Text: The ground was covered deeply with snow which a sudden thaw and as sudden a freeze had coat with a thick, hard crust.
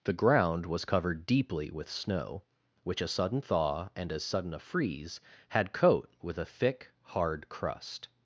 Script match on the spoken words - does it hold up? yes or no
yes